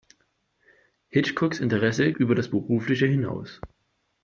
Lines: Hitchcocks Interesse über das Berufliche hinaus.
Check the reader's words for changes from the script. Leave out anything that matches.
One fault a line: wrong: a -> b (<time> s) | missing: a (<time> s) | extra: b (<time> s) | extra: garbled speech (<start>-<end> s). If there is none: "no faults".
no faults